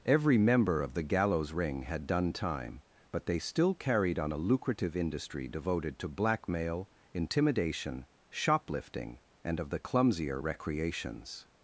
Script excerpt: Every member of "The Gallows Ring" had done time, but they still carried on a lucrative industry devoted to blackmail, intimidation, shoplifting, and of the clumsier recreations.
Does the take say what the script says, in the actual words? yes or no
yes